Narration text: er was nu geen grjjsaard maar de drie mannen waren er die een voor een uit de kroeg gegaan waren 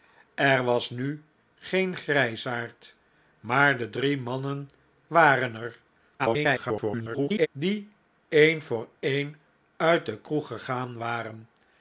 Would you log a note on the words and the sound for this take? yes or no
yes